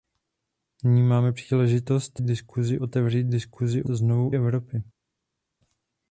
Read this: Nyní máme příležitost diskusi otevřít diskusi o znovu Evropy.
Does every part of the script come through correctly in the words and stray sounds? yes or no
yes